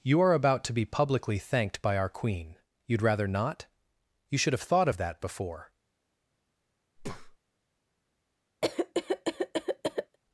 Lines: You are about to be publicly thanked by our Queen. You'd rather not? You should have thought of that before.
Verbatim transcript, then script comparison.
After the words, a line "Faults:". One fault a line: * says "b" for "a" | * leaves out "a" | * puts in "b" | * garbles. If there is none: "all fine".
You are about to be publicly thanked by our Queen. You'd rather not? You should have thought of that before.
Faults:
all fine